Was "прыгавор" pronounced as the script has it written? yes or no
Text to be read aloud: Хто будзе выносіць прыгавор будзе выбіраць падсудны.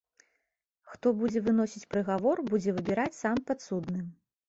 yes